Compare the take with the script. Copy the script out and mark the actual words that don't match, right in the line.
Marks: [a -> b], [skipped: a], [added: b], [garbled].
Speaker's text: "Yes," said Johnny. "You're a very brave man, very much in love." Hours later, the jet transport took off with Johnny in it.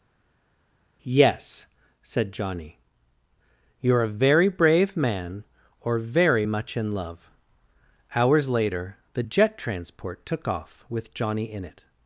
"Yes," said Johnny. "You're a very brave man, [added: or] very much in love." Hours later, the jet transport took off with Johnny in it.